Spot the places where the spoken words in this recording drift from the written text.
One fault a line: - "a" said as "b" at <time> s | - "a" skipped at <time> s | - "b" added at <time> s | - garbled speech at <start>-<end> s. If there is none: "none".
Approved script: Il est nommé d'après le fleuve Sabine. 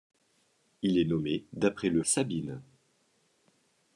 - "fleuve" skipped at 2.0 s